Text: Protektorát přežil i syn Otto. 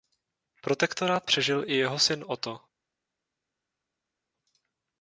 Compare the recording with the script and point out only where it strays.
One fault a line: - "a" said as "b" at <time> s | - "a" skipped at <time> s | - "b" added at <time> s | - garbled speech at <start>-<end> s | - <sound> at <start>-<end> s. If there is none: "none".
- "jeho" added at 1.8 s